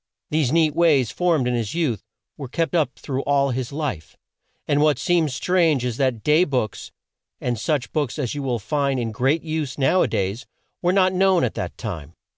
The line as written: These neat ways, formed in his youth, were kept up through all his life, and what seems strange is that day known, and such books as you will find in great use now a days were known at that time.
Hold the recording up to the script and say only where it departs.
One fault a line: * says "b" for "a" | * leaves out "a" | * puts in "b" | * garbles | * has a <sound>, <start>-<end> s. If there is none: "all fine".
* says "books" for "known"
* puts in "not"